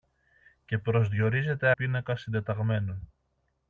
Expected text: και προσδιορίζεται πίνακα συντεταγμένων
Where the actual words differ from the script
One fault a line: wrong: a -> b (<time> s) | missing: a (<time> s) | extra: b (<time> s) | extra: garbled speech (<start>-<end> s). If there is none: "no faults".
no faults